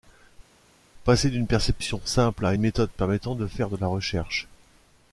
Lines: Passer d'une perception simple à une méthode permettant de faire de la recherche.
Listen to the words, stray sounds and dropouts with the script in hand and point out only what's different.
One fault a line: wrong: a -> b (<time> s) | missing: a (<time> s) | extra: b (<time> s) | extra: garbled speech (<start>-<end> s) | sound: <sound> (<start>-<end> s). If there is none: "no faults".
no faults